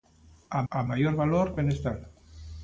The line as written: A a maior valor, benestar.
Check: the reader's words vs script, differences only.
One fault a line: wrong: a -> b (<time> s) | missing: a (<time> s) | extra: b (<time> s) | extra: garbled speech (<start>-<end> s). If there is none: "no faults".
no faults